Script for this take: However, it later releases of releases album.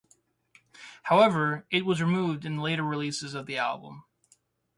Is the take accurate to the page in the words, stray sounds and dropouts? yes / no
no